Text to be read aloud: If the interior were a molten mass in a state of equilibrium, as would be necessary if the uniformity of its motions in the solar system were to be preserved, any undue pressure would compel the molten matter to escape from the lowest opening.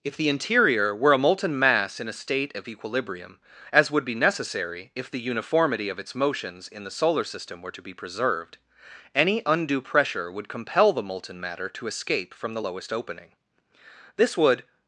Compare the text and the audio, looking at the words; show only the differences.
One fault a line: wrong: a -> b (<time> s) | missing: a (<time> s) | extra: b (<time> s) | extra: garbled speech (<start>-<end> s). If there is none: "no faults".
extra: This would (14.1 s)